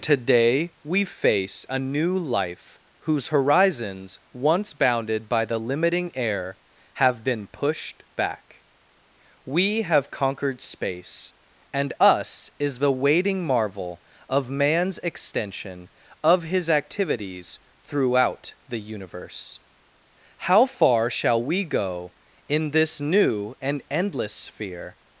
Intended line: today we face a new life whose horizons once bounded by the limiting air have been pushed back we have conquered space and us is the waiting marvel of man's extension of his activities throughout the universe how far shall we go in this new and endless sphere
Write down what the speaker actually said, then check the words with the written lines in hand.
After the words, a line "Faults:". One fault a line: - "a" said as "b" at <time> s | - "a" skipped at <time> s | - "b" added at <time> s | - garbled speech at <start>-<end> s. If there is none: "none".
today we face a new life whose horizons once bounded by the limiting air have been pushed back we have conquered space and us is the waiting marvel of man's extension of his activities throughout the universe how far shall we go in this new and endless sphere
Faults:
none